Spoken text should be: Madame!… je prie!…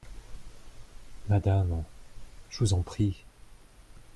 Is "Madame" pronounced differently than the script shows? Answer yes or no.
no